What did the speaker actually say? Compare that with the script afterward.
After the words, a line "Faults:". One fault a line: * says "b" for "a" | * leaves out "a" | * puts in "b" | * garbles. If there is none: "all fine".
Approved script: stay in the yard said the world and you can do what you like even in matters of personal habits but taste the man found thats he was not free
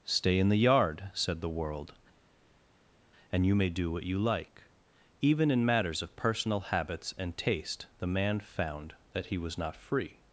stay in the yard said the world and you may do what you like even in matters of personal habits and taste the man found that he was not free
Faults:
* says "may" for "can"
* says "and" for "but"
* says "that" for "thats"